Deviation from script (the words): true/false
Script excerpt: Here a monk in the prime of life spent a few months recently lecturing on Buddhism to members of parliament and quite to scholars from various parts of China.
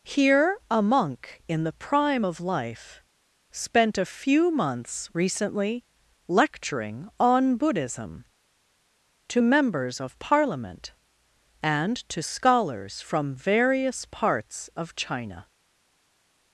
true